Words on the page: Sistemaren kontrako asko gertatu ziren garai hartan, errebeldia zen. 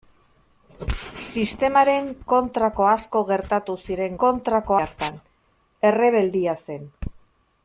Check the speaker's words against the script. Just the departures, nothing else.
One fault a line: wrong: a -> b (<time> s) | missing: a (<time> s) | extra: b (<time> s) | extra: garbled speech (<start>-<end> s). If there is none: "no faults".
wrong: garai -> kontrako (4.2 s)